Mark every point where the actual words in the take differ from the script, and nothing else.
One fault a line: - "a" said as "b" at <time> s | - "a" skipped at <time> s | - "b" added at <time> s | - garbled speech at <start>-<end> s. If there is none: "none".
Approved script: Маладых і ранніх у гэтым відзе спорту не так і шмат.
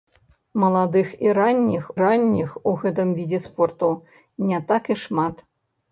- "ранніх" added at 2.0 s